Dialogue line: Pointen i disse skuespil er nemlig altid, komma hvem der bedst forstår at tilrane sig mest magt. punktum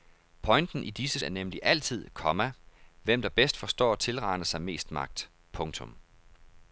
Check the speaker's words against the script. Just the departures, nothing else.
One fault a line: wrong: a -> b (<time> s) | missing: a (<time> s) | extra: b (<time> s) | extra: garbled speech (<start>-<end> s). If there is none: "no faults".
missing: skuespil (1.2 s)